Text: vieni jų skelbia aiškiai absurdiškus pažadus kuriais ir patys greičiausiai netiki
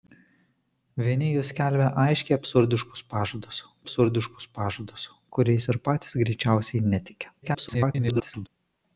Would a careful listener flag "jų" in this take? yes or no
no